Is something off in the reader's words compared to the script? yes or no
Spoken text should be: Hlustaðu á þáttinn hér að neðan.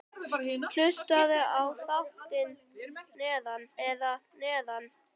yes